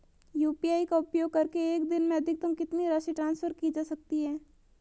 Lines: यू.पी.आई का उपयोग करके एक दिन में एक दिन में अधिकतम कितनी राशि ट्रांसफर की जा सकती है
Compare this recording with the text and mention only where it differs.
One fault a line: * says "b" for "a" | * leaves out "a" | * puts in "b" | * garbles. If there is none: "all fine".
* leaves out "एक दिन में"